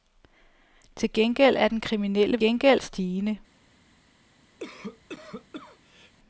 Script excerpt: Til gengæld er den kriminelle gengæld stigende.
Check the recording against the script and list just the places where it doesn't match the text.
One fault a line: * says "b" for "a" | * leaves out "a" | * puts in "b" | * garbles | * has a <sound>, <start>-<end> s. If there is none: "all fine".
* has a cough, 4.6-6.1 s